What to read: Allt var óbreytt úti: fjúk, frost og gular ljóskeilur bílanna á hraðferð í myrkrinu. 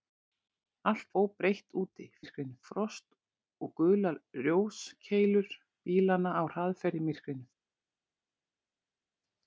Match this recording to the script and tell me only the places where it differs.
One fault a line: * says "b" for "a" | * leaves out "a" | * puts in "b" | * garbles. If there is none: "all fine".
* leaves out "var"
* says "myrkrinu" for "fjúk"